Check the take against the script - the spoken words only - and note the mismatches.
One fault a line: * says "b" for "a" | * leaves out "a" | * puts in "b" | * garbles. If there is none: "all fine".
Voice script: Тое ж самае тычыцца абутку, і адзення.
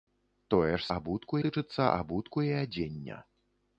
* says "абутку" for "самае"